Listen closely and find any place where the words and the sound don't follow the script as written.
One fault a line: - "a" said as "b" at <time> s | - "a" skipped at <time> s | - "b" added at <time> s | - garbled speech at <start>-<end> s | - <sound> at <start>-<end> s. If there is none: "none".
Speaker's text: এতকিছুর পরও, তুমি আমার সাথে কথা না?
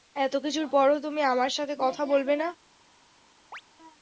- "বলবে" added at 2.0 s
- chirp at 3.5-3.6 s